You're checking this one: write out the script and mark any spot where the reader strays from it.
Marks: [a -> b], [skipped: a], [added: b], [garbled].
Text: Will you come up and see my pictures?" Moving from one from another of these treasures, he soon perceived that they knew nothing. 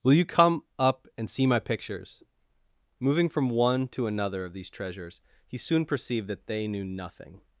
Will you come up and see my pictures?" Moving from one [from -> to] another of these treasures, he soon perceived that they knew nothing.